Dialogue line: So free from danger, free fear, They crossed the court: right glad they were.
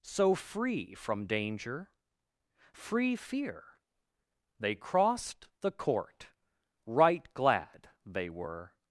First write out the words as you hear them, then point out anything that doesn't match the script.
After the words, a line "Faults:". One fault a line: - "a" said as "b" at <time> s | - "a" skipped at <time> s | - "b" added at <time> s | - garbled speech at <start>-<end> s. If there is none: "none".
So free from danger, free fear, They crossed the court: right glad they were.
Faults:
none